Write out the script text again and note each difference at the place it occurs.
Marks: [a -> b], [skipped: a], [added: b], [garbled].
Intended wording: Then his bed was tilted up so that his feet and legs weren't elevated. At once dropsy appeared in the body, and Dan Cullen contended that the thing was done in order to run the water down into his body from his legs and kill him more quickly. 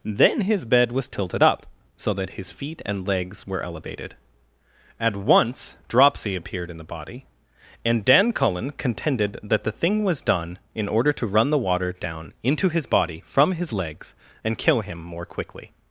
Then his bed was tilted up so that his feet and legs [weren't -> were] elevated. At once dropsy appeared in the body, and Dan Cullen contended that the thing was done in order to run the water down into his body from his legs and kill him more quickly.